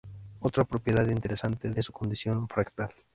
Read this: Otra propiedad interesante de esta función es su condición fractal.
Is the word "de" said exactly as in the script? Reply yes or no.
no